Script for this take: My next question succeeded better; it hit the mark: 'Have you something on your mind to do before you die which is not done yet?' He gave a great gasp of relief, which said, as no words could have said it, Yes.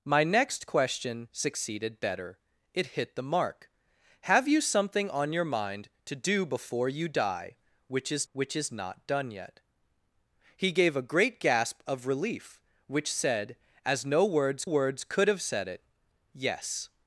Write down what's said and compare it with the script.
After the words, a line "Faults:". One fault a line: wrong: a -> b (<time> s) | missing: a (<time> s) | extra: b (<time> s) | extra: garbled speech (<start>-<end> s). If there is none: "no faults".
My next question succeeded better; it hit the mark: 'Have you something on your mind to do before you die which is which is not done yet?' He gave a great gasp of relief, which said, as no words words could have said it, Yes.
Faults:
extra: which is (8.3 s)
extra: words (14.6 s)